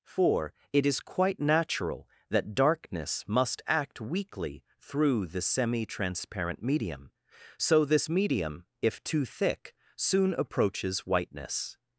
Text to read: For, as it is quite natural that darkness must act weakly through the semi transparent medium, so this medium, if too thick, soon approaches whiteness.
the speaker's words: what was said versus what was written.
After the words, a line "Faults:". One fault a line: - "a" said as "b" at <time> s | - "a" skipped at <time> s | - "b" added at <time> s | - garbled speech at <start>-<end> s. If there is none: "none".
For, it is quite natural that darkness must act weakly through the semi transparent medium, so this medium, if too thick, soon approaches whiteness.
Faults:
- "as" skipped at 0.5 s